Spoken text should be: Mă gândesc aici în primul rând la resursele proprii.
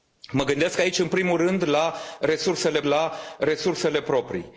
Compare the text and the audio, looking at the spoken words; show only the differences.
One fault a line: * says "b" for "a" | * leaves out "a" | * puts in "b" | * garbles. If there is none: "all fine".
* puts in "la resursele"